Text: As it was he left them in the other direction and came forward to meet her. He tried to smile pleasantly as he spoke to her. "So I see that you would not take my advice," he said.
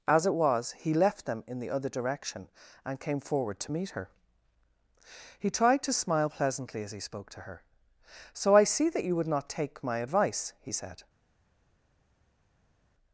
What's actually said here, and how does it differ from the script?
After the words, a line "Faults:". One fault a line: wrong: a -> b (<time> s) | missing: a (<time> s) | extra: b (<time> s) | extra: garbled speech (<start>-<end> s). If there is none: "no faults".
As it was he left them in the other direction and came forward to meet her. He tried to smile pleasantly as he spoke to her. "So I see that you would not take my advice," he said.
Faults:
no faults